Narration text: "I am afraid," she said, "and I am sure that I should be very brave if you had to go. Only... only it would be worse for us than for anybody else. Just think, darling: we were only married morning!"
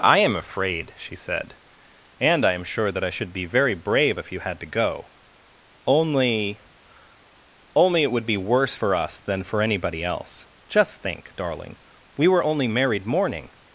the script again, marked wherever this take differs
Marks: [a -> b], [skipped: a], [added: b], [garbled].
"I am afraid," she said, "and I am sure that I should be very brave if you had to go. Only... only it would be worse for us than for anybody else. Just think, darling: we were only married morning!"